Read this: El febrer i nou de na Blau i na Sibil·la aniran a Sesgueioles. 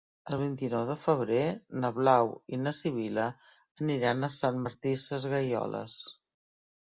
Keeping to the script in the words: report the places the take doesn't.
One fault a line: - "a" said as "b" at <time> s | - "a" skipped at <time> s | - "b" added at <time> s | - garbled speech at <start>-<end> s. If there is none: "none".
- "febrer" said as "vint" at 0.4 s
- "febrer" added at 1.0 s
- "Sant Martí" added at 4.4 s